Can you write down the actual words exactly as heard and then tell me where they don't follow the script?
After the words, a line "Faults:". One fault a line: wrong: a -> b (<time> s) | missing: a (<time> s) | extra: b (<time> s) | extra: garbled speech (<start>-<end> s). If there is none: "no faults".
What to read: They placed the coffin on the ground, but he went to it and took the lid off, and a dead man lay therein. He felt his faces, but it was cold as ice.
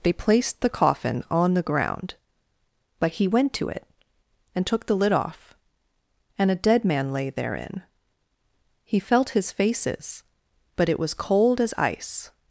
They placed the coffin on the ground, but he went to it and took the lid off, and a dead man lay therein. He felt his faces, but it was cold as ice.
Faults:
no faults